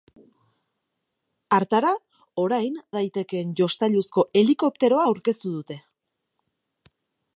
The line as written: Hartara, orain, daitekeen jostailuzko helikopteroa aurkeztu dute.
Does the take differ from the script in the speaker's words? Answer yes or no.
no